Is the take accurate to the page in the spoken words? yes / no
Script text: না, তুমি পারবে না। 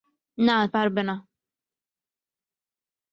no